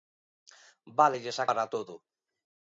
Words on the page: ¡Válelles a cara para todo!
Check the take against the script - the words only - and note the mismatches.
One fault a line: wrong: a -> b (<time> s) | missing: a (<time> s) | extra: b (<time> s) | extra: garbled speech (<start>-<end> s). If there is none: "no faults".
missing: cara (1.4 s)